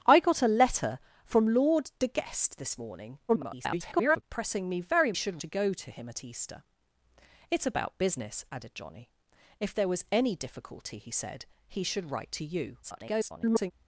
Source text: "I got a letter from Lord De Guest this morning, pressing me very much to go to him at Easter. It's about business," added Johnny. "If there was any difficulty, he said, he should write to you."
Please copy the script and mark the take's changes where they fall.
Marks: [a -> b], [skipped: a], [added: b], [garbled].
"I got a letter from Lord De Guest this morning, [garbled] pressing me very [much -> should] to go to him at Easter. It's about business," added Johnny. "If there was any difficulty, he said, he should write to you." [garbled]